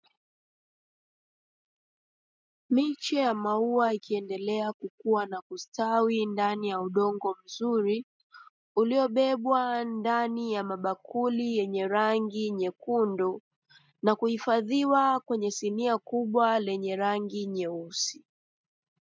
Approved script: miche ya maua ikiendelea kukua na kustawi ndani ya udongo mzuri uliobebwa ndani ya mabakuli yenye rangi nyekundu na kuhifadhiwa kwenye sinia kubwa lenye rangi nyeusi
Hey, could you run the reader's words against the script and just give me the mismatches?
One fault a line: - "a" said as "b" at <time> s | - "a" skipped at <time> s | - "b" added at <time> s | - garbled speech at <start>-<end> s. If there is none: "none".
none